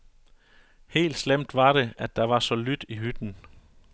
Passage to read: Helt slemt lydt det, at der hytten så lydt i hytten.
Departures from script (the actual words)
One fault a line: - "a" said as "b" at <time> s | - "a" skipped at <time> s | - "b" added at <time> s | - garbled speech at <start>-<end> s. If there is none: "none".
- "lydt" said as "var" at 1.6 s
- "hytten" said as "var" at 2.2 s